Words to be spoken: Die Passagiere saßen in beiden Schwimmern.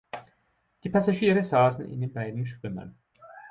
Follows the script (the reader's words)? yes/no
no